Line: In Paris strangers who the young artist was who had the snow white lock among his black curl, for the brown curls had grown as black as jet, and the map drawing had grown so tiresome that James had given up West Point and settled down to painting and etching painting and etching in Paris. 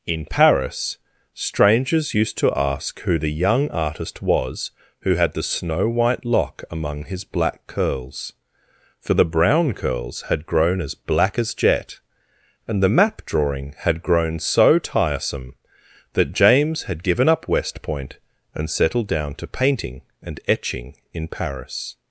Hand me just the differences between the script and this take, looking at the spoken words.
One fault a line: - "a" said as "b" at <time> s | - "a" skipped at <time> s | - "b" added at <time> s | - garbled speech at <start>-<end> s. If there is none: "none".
- "used to ask" added at 2.1 s
- "curl" said as "curls" at 7.7 s
- "painting and etching" skipped at 20.9 s